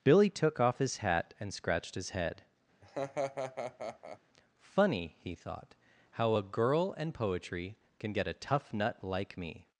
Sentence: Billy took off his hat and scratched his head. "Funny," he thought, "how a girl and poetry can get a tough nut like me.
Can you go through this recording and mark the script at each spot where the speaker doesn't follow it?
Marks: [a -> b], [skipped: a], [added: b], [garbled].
Billy took off his hat and scratched his head. "Funny," he thought, "how a girl and poetry can get a tough nut like me.